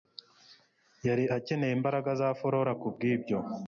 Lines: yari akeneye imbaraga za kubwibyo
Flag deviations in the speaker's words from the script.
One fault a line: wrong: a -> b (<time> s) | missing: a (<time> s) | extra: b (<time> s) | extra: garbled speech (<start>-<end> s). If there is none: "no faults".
extra: flora (2.4 s)